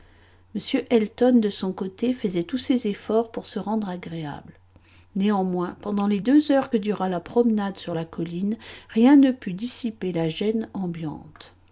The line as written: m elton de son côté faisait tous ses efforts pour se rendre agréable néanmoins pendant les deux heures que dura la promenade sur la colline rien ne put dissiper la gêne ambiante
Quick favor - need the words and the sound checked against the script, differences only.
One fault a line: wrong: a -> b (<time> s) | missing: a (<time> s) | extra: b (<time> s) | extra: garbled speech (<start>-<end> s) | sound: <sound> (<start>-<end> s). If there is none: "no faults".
no faults